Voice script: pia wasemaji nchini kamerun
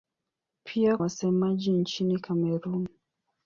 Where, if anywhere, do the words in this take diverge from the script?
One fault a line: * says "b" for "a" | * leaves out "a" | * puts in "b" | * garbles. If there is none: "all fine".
all fine